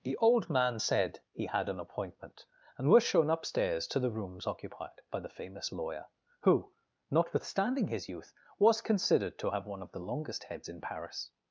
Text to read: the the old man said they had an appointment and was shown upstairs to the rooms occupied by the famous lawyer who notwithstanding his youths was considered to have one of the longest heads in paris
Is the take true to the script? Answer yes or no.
no